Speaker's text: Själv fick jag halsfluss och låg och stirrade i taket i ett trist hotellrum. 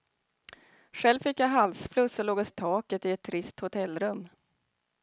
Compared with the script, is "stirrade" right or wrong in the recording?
wrong